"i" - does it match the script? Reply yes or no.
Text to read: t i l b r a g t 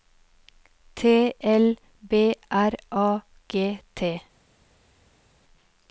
no